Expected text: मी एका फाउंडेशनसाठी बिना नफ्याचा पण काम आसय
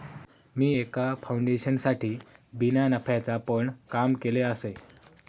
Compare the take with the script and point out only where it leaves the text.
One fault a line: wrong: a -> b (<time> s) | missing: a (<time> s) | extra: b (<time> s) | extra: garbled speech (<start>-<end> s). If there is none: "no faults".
extra: केलय (4.1 s)